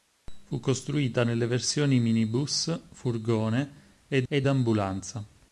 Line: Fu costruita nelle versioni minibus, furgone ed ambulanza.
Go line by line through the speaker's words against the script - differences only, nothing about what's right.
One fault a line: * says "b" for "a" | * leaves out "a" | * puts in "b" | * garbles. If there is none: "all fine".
* puts in "ed"